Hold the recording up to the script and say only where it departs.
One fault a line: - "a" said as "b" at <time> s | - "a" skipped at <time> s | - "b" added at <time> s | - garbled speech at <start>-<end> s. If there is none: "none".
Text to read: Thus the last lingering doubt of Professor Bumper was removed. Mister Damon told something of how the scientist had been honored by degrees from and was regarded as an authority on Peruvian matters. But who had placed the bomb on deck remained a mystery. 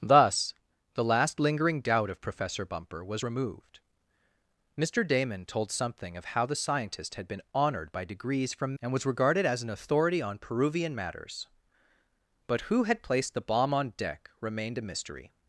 none